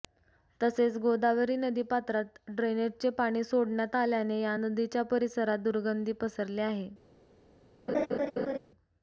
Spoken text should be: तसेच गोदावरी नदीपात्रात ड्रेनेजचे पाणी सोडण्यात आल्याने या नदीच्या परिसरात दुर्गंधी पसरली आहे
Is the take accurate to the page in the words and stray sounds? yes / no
no